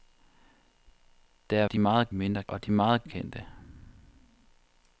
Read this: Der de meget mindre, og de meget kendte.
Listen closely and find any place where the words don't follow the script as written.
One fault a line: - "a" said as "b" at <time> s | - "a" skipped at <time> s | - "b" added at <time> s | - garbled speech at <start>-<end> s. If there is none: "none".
none